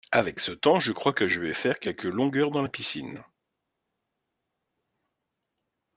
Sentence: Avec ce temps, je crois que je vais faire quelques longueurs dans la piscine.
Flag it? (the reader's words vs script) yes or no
no